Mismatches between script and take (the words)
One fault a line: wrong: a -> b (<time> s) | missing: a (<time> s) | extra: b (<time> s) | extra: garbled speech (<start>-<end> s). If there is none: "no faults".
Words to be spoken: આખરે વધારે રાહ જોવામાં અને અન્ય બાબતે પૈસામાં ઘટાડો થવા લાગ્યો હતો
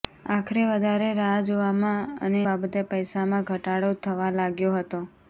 missing: અન્ય (2.4 s)